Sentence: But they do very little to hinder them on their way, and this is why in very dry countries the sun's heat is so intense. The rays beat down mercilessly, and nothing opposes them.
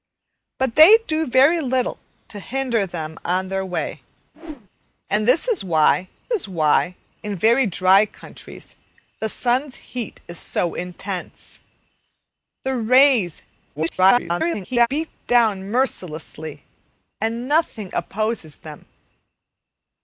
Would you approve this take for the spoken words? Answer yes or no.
no